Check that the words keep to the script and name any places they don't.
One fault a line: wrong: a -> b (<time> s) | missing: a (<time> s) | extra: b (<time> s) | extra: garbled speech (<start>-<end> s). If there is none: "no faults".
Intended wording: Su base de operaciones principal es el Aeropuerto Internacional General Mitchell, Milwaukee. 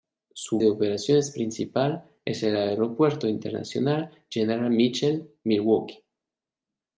missing: base (0.6 s)